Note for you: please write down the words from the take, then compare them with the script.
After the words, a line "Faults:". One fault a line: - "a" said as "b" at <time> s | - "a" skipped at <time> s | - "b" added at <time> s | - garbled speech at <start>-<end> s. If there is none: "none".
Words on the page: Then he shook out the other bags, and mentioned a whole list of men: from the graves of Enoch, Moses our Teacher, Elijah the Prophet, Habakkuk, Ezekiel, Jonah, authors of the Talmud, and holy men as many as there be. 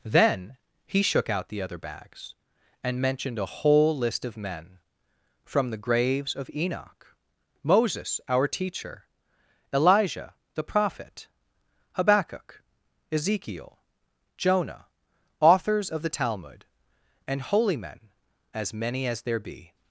Then he shook out the other bags, and mentioned a whole list of men: from the graves of Enoch, Moses our Teacher, Elijah the Prophet, Habakkuk, Ezekiel, Jonah, authors of the Talmud, and holy men as many as there be.
Faults:
none